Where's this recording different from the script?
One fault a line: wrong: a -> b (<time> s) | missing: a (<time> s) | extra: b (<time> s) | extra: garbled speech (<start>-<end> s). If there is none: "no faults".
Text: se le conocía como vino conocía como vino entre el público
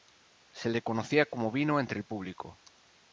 missing: conocía como vino (1.8 s)